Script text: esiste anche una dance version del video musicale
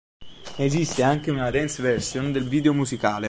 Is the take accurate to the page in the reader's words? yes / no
yes